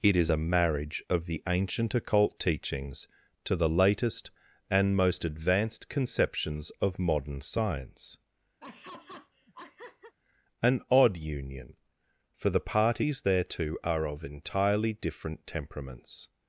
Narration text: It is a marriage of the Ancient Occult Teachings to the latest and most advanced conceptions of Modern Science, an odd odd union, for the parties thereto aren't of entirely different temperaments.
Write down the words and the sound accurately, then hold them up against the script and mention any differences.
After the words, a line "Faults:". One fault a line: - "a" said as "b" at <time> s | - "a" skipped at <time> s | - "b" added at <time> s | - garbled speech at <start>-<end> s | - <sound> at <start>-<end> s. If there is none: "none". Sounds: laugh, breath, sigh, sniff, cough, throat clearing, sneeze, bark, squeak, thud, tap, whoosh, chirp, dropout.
It is a marriage of the Ancient Occult Teachings to the latest and most advanced conceptions of Modern Science, an odd union, for the parties thereto are of entirely different temperaments.
Faults:
- laugh at 8.6-10.1 s
- "odd" skipped at 11.2 s
- "aren't" said as "are" at 13.8 s